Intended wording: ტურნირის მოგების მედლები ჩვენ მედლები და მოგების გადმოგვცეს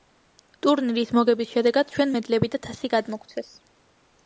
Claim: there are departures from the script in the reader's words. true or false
true